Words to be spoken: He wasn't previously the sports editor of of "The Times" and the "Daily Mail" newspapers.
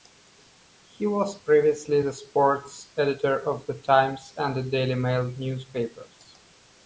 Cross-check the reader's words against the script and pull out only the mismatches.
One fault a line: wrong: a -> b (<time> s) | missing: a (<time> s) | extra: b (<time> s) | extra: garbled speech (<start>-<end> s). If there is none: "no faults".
wrong: wasn't -> was (1.1 s)
missing: of (3.6 s)